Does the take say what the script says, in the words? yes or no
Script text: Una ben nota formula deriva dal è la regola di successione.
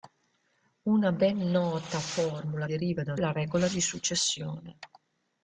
yes